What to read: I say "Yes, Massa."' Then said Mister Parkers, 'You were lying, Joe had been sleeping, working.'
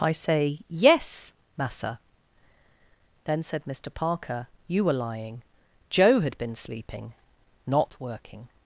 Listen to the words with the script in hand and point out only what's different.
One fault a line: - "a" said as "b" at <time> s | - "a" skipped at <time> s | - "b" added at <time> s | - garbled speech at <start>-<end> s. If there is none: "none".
- "Parkers" said as "Parker" at 3.9 s
- "not" added at 7.7 s